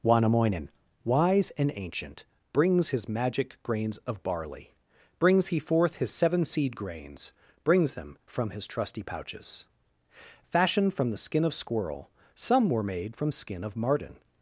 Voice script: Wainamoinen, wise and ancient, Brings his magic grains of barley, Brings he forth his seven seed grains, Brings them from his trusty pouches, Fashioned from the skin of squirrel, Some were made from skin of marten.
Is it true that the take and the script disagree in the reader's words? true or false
false